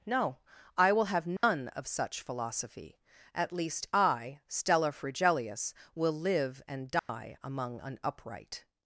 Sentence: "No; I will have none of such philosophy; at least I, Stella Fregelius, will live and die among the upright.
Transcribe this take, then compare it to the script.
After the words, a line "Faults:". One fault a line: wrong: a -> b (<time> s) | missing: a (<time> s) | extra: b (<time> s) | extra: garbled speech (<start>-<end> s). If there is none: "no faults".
"No; I will have none of such philosophy; at least I, Stella Fregelius, will live and die among an upright.
Faults:
wrong: the -> an (7.8 s)